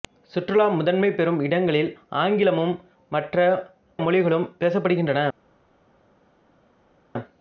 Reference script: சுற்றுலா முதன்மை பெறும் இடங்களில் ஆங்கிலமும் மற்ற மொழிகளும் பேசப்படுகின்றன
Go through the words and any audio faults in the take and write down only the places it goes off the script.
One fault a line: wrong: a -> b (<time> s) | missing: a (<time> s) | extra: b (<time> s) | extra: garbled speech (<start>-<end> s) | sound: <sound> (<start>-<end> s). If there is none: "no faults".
no faults